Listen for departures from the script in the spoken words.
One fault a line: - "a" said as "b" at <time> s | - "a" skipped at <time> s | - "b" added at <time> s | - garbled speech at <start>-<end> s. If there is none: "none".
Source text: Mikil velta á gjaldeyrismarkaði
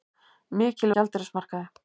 - "velta" skipped at 0.9 s